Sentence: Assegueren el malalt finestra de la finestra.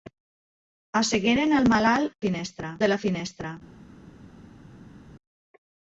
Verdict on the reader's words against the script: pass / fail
pass